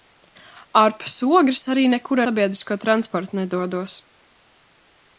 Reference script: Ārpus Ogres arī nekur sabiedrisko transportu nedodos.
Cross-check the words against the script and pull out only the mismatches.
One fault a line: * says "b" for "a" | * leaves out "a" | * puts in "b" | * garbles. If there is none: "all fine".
all fine